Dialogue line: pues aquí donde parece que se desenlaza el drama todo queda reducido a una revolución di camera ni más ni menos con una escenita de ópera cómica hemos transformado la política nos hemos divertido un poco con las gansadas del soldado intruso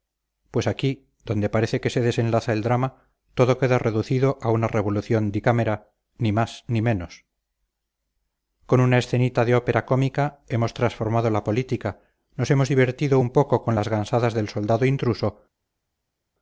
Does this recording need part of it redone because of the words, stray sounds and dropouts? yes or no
no